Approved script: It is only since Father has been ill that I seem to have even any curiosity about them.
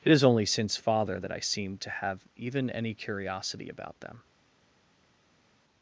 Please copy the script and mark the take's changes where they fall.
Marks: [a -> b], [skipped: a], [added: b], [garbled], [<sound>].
It is only since Father [skipped: has been ill] that I seem to have even any curiosity about them.